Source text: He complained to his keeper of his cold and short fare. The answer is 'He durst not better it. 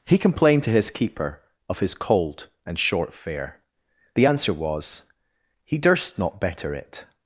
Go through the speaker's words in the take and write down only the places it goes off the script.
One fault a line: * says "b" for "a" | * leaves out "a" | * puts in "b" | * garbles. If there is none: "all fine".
* says "was" for "is"